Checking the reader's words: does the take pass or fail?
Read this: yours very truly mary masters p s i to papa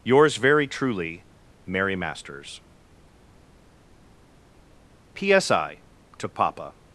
pass